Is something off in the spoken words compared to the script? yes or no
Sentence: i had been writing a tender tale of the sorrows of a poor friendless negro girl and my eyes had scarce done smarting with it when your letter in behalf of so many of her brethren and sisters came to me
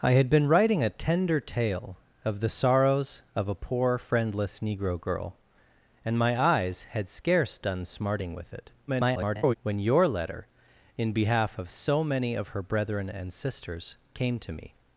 yes